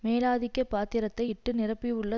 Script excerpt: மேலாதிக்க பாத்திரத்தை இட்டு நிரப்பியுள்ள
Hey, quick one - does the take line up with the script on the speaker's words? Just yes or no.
yes